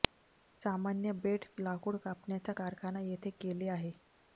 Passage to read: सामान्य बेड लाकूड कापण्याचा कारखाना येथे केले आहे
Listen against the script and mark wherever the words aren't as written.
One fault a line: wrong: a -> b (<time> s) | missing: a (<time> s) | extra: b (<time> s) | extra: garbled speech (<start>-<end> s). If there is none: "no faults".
no faults